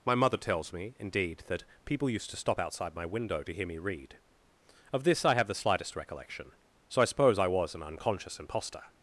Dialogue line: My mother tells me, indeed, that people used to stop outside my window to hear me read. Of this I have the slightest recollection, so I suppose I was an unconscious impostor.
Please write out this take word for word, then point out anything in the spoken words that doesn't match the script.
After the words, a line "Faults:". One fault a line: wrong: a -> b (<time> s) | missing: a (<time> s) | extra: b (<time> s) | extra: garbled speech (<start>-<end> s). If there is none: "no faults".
My mother tells me, indeed, that people used to stop outside my window to hear me read. Of this I have the slightest recollection, so I suppose I was an unconscious impostor.
Faults:
no faults